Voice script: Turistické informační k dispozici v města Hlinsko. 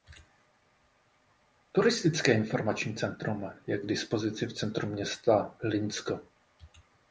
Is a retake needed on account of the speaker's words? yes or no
yes